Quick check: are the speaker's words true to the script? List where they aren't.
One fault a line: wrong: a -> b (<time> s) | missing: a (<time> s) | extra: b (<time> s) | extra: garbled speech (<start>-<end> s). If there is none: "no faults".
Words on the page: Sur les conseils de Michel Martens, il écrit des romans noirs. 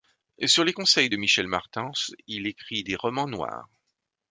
no faults